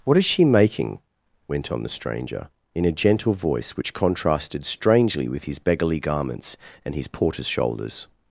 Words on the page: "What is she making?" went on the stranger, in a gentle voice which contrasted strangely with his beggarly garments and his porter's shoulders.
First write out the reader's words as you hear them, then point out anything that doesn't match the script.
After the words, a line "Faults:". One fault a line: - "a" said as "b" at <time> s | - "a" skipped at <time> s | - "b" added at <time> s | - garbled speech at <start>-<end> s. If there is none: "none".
"What is she making?" went on the stranger, in a gentle voice which contrasted strangely with his beggarly garments and his porter's shoulders.
Faults:
none